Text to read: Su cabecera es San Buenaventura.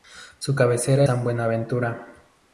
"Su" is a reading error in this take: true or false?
false